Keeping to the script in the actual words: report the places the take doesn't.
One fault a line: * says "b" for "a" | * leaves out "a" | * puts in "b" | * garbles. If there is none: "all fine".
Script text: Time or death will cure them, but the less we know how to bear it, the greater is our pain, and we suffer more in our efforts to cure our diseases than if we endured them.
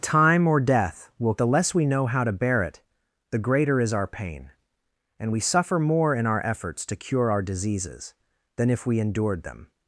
* leaves out "cure them but"